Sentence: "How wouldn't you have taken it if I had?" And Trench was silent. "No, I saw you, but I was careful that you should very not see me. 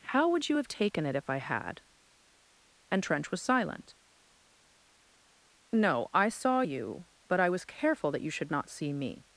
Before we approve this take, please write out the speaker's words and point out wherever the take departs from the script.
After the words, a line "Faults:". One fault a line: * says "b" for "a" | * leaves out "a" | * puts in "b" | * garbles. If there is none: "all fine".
"How would you have taken it if I had?" And Trench was silent. "No, I saw you, but I was careful that you should not see me.
Faults:
* says "would" for "wouldn't"
* leaves out "very"